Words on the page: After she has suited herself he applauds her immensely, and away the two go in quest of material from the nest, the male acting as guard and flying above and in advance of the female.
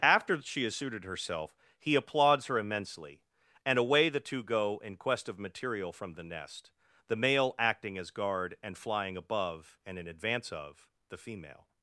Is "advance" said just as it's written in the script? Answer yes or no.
yes